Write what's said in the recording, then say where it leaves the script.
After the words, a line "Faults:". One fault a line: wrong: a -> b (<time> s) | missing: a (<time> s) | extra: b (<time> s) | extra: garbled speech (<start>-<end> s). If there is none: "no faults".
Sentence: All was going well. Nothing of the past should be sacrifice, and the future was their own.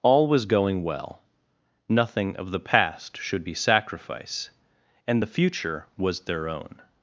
All was going well. Nothing of the past should be sacrifice, and the future was their own.
Faults:
no faults